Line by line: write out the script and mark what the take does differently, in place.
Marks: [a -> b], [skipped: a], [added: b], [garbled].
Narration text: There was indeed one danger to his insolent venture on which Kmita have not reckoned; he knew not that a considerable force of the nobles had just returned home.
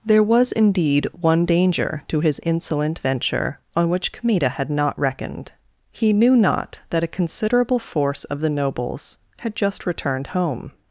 There was indeed one danger to his insolent venture on which Kmita [have -> had] not reckoned; he knew not that a considerable force of the nobles had just returned home.